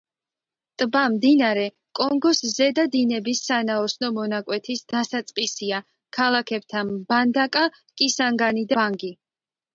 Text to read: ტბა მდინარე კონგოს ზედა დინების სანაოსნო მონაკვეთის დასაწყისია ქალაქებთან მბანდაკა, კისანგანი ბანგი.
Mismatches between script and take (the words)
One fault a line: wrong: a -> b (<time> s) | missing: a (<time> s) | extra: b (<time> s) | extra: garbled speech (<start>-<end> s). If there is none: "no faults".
no faults